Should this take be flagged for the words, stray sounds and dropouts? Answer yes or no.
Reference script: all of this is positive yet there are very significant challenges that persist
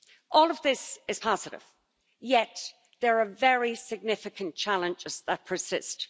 no